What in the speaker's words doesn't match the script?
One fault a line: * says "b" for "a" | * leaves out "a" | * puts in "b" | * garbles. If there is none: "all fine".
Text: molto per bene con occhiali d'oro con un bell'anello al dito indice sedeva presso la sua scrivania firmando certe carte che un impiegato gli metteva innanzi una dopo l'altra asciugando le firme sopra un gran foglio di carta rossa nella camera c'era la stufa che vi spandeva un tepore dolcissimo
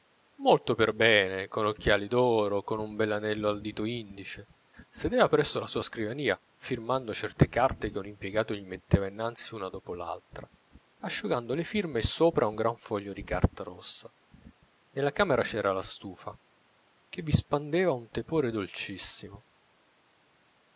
all fine